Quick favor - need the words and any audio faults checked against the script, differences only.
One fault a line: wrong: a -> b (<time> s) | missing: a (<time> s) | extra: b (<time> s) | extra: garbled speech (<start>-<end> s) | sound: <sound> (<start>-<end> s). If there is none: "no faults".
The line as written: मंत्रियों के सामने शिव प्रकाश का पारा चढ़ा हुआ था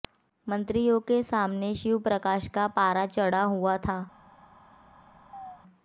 sound: chirp (5.3-5.6 s)